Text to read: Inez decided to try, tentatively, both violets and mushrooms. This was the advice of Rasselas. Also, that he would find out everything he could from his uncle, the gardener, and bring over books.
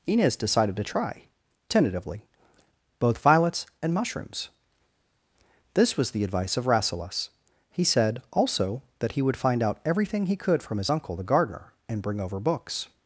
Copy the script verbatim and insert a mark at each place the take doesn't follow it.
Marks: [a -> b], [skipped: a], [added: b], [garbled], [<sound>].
Inez decided to try, tentatively, both violets and mushrooms. This was the advice of Rasselas. [added: He said] Also, that he would find out everything he could from his uncle, the gardener, and bring over books.